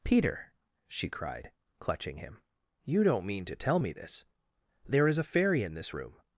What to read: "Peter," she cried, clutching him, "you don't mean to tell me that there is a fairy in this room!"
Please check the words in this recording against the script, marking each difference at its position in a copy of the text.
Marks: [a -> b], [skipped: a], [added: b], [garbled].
"Peter," she cried, clutching him, "you don't mean to tell me [that -> this] there is a fairy in this room!"